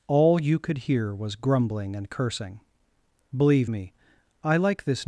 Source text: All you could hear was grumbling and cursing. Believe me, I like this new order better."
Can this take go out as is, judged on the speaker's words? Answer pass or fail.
fail